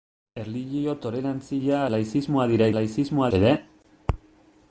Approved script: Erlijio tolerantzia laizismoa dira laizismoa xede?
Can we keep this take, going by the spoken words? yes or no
yes